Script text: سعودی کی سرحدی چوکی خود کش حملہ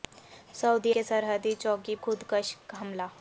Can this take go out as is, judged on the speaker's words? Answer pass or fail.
pass